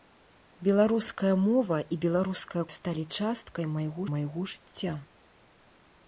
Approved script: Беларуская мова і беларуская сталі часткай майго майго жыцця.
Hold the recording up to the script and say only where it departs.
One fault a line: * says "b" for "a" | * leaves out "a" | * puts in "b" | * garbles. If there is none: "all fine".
all fine